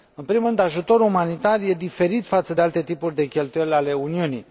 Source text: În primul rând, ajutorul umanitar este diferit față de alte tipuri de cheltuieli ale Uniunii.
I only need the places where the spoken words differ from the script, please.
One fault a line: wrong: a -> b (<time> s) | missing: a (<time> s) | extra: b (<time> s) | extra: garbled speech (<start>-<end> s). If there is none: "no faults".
no faults